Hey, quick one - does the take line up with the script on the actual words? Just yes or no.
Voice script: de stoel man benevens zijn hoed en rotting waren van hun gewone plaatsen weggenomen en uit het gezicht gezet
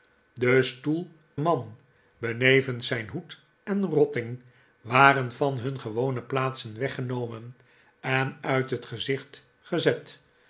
yes